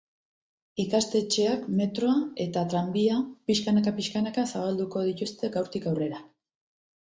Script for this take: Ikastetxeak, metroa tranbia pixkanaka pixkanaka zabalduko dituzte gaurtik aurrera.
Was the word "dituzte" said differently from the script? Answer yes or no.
no